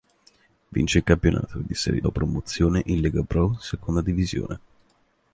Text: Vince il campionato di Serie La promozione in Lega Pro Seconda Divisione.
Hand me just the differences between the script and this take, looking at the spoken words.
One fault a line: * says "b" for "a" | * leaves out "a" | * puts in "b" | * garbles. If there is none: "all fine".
all fine